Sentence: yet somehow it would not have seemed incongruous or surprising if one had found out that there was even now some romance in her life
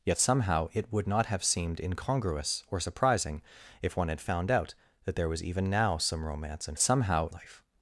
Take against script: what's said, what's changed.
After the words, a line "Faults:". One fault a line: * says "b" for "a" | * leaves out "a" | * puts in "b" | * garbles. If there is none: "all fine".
yet somehow it would not have seemed incongruous or surprising if one had found out that there was even now some romance in somehow life
Faults:
* says "somehow" for "her"